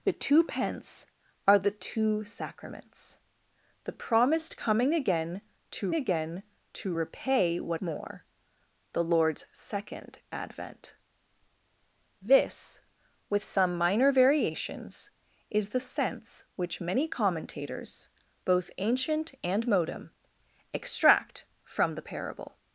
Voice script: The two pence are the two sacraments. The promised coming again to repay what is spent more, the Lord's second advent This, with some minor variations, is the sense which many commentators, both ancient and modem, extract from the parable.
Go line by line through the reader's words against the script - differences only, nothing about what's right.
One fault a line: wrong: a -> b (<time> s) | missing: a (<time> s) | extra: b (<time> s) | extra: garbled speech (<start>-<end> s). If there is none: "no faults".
extra: again to (5.9 s)
missing: is spent (7.8 s)